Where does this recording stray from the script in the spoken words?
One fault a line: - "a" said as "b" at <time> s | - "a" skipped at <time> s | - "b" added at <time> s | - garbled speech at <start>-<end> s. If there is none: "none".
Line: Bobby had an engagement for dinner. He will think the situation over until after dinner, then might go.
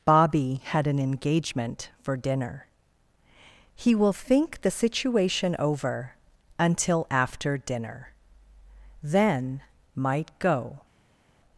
none